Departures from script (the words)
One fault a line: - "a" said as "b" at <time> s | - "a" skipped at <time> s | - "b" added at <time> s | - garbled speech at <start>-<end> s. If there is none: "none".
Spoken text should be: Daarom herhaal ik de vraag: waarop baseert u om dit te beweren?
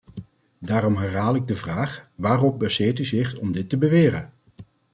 - "zich" added at 3.0 s